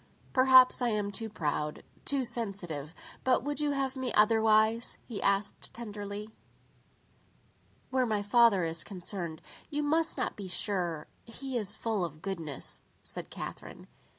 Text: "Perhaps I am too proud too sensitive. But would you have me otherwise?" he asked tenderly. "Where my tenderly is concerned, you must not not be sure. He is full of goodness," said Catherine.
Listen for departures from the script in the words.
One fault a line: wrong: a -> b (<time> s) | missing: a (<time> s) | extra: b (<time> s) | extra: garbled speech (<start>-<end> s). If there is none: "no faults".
wrong: tenderly -> father (8.2 s)
missing: not (10.4 s)